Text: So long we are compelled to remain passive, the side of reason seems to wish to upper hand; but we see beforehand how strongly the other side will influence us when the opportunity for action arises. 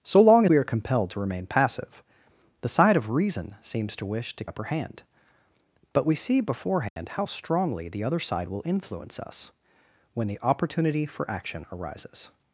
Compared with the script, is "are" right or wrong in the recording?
right